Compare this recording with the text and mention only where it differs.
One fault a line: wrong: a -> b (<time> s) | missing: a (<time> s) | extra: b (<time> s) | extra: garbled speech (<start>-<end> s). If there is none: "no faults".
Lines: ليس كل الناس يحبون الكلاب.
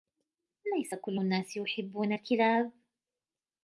no faults